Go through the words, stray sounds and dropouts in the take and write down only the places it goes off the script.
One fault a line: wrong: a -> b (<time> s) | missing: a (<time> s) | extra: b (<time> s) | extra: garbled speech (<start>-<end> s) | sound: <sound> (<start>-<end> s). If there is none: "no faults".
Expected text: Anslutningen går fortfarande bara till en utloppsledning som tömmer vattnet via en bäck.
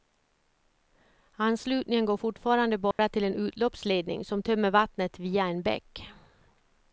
sound: dropout (2.9-3.0 s)